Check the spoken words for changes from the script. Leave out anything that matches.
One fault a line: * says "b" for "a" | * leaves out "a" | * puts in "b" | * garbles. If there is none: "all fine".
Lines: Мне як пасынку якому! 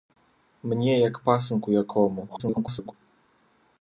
* garbles